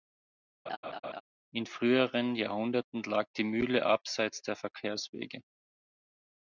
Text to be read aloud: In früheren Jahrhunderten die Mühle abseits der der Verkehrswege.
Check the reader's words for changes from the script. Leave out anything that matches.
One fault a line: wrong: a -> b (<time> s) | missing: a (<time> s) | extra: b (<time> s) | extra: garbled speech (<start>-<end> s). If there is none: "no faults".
extra: lag (3.0 s)
missing: der (4.5 s)